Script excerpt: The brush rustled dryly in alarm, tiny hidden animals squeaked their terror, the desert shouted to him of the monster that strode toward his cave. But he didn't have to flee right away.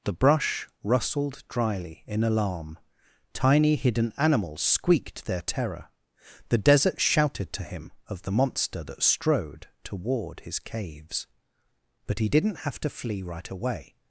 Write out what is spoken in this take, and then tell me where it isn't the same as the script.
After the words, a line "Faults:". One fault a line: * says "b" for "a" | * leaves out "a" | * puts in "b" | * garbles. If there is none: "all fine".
The brush rustled dryly in alarm, tiny hidden animals squeaked their terror, the desert shouted to him of the monster that strode toward his caves. But he didn't have to flee right away.
Faults:
* says "caves" for "cave"